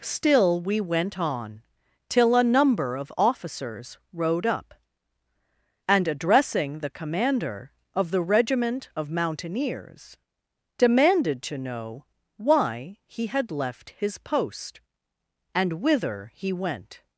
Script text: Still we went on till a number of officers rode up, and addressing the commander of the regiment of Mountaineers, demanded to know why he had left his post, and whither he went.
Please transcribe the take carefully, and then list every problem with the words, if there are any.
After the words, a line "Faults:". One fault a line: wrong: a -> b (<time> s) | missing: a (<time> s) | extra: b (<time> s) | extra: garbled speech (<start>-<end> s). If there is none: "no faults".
Still we went on till a number of officers rode up, and addressing the commander of the regiment of Mountaineers, demanded to know why he had left his post, and whither he went.
Faults:
no faults